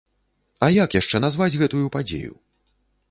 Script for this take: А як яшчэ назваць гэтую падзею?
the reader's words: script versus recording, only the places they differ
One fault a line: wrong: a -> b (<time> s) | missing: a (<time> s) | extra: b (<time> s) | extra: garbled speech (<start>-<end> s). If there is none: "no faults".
no faults